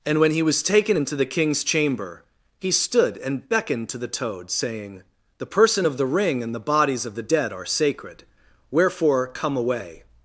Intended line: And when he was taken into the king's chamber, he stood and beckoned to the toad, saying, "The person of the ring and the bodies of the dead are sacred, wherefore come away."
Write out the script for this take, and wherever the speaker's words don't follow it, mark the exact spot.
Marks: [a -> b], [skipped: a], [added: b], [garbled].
And when he was taken into the king's chamber, he stood and beckoned to the toad, saying, "The person of the ring and the bodies of the dead are sacred, wherefore come away."